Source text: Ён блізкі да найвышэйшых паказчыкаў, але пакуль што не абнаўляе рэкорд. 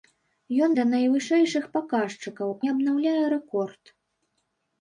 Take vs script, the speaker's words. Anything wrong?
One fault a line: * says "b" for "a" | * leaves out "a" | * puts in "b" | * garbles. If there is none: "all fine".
* leaves out "блізкі"
* leaves out "але пакуль што"